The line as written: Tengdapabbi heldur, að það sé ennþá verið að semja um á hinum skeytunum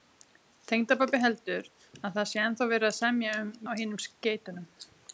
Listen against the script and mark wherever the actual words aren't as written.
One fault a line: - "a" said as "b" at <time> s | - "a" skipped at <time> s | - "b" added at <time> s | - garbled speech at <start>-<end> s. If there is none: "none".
none